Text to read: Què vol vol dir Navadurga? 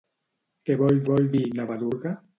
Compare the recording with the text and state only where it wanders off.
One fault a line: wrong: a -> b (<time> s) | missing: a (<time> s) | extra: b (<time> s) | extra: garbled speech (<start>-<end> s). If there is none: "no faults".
no faults